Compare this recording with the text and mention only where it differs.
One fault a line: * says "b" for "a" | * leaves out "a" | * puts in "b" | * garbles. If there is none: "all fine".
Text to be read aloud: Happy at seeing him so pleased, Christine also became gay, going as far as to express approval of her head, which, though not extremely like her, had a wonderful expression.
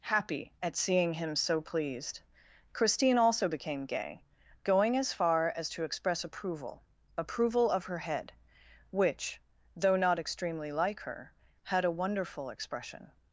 * puts in "approval"